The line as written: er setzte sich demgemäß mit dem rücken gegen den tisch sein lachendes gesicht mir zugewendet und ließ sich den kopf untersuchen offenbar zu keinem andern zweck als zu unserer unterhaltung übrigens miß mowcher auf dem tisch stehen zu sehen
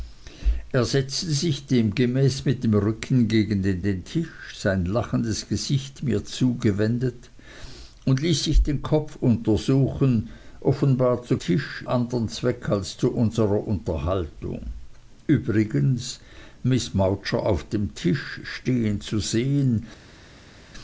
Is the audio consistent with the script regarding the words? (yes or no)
no